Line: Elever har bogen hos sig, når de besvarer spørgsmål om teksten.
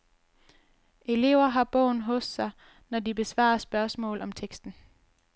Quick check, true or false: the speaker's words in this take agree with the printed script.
true